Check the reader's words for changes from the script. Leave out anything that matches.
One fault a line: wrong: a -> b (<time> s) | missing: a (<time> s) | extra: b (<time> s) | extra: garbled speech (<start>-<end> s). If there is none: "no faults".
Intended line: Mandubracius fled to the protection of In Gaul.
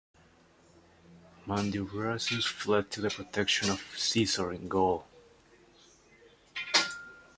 extra: Caesar (4.0 s)